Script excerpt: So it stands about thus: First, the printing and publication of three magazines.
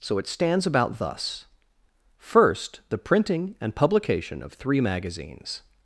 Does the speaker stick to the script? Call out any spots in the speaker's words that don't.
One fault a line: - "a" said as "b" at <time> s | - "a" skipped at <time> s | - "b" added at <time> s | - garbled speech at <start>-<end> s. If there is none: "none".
none